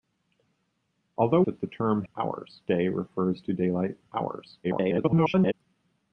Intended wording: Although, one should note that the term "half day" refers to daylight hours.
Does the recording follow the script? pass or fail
fail